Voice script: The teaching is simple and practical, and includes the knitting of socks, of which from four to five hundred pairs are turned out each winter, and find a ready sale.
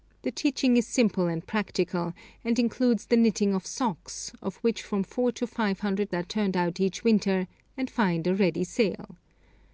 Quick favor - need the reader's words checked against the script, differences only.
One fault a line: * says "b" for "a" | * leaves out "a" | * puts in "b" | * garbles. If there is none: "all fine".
* leaves out "pairs"